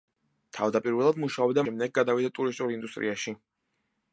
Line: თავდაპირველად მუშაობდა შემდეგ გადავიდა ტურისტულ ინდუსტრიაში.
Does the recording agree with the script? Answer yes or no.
yes